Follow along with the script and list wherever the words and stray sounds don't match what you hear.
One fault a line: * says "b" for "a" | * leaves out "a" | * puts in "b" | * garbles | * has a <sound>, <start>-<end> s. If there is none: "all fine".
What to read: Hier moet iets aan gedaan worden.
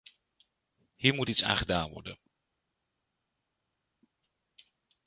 all fine